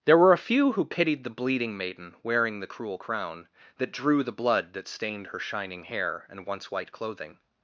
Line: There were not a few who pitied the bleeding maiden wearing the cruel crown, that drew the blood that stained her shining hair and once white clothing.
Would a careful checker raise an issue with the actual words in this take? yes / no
yes